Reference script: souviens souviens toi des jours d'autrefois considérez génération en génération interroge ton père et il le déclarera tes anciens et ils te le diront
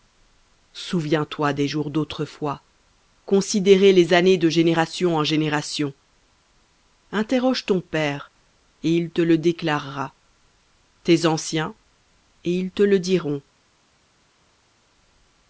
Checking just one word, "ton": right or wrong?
right